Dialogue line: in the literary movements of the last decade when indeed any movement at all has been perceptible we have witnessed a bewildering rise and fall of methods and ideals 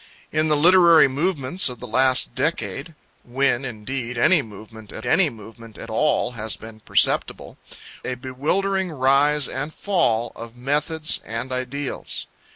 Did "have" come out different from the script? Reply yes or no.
yes